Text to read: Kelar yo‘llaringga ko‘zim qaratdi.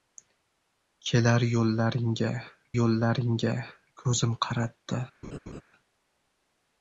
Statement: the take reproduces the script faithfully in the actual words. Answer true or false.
false